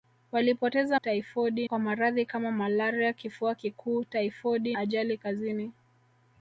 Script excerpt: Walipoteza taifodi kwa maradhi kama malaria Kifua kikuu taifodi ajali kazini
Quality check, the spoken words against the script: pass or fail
pass